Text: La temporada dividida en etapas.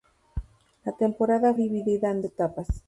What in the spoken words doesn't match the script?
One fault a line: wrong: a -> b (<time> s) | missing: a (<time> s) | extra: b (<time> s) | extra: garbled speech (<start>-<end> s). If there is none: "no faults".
no faults